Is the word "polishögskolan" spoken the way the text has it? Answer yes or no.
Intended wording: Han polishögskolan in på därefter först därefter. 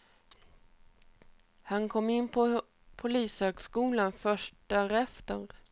no